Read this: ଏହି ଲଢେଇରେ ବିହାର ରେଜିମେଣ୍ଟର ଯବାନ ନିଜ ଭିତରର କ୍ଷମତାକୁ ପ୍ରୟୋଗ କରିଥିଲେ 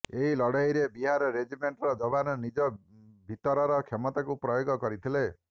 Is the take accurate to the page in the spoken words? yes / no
yes